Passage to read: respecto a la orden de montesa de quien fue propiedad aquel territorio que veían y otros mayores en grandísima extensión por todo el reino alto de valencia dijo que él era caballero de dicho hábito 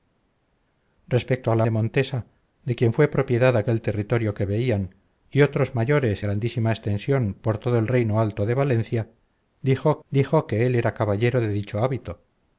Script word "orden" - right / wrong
wrong